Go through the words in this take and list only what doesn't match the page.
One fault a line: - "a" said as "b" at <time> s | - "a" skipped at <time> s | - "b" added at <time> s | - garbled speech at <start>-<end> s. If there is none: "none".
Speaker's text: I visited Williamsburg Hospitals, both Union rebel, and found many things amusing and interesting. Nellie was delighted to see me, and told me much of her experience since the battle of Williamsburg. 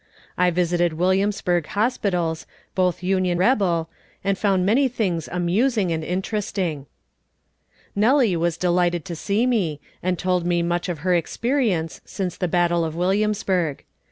none